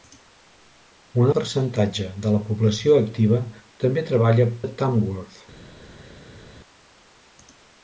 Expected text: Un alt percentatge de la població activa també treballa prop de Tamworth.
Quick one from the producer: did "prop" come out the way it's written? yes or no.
no